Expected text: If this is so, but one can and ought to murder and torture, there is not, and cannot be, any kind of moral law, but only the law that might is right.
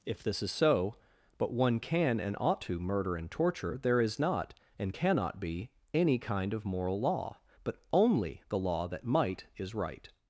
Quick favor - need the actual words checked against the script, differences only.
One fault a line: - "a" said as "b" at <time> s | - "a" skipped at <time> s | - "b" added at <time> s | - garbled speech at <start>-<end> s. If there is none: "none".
none